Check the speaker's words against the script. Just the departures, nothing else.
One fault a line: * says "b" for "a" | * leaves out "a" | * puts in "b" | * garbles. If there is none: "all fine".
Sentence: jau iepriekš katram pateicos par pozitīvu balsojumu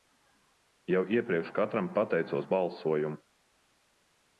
* leaves out "par pozitīvu"